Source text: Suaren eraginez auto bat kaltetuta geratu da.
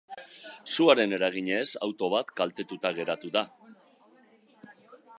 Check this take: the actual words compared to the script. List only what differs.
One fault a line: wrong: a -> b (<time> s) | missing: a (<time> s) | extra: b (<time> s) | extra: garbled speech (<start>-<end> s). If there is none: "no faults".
no faults